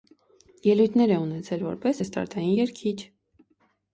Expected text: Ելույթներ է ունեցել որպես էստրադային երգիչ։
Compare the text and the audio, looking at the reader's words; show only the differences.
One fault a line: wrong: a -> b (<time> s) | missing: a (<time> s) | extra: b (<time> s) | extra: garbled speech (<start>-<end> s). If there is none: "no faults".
no faults